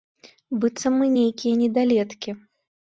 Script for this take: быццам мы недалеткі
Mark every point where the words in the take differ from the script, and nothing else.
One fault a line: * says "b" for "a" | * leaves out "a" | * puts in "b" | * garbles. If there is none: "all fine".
* puts in "нейкія"